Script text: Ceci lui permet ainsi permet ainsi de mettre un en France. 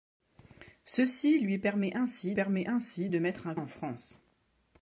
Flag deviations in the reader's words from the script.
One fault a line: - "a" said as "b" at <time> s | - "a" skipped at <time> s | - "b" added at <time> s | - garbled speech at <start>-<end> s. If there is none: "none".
none